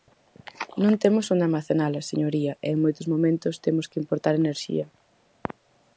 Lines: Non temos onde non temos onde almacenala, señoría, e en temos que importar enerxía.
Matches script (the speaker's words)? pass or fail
fail